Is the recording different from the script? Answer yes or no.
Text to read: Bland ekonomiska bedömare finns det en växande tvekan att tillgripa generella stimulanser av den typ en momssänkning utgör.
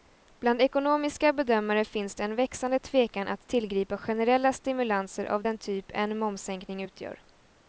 no